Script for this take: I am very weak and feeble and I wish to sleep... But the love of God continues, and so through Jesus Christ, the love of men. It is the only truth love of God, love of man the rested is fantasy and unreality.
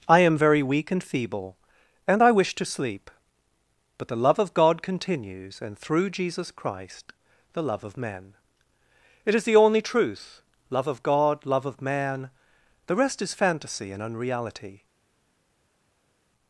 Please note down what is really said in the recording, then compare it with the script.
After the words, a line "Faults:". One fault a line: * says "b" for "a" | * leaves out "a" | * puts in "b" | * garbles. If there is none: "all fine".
I am very weak and feeble and I wish to sleep... But the love of God continues, and through Jesus Christ, the love of men. It is the only truth love of God, love of man the rest is fantasy and unreality.
Faults:
* leaves out "so"
* says "rest" for "rested"